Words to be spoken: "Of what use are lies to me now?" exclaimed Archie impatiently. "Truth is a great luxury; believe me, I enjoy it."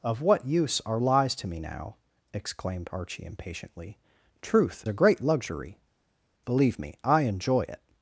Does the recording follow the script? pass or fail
fail